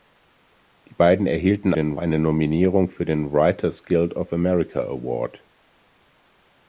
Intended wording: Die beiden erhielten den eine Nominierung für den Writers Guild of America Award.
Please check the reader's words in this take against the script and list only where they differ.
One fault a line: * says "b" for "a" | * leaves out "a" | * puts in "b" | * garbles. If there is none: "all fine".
all fine